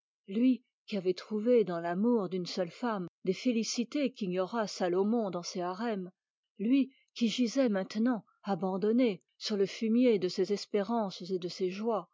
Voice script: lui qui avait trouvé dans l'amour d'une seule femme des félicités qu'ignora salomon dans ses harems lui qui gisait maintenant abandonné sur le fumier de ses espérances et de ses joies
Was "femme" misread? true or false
false